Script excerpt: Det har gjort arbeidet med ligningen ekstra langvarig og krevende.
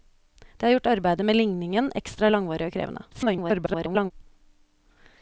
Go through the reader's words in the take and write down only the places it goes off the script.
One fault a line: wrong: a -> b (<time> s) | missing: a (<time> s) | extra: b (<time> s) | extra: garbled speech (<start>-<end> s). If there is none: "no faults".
extra: garbled speech (3.1-4.1 s)